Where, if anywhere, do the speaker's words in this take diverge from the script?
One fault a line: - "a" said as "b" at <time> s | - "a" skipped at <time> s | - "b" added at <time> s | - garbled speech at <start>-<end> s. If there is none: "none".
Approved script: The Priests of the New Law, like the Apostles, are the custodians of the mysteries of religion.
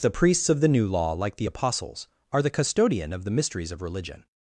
- "custodians" said as "custodian" at 2.5 s